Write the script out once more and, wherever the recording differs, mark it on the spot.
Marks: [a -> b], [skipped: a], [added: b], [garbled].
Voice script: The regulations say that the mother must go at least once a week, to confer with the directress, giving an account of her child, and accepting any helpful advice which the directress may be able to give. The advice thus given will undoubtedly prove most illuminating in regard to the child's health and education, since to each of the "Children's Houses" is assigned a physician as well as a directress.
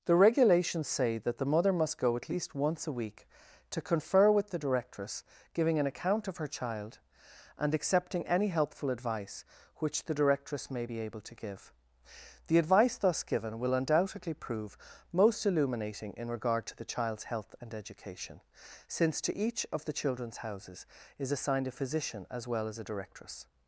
The regulations say that the mother must go at least once a week, to confer with the directress, giving an account of her child, and accepting any helpful advice which the directress may be able to give. The advice thus given will undoubtedly prove most illuminating in regard to the child's health and education, since to each of the "Children's Houses" is assigned a physician as well as a directress.